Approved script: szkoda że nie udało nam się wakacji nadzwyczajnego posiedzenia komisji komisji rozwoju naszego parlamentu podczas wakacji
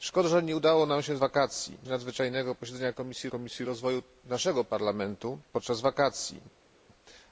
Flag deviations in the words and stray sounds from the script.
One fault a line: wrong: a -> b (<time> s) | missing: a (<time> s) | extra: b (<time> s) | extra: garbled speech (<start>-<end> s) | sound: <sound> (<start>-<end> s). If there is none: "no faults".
no faults